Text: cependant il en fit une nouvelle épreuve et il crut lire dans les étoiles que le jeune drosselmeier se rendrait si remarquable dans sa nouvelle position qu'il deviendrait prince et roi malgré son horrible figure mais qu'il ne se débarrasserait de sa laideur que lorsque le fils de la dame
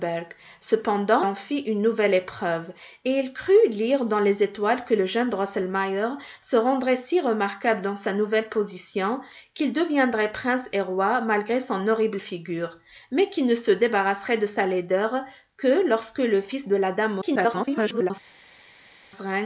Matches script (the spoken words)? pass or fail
fail